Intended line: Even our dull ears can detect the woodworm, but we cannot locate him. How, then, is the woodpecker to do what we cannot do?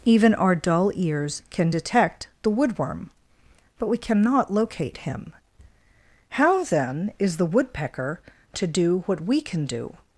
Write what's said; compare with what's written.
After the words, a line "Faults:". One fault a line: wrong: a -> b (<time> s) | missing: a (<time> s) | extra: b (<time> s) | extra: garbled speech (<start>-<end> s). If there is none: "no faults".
Even our dull ears can detect the woodworm, but we cannot locate him. How, then, is the woodpecker to do what we can do?
Faults:
wrong: cannot -> can (9.4 s)